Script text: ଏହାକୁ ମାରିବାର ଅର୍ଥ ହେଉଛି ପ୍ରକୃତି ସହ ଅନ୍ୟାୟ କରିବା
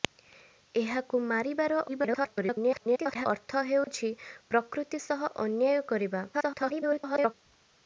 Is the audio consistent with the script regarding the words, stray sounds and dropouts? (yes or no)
no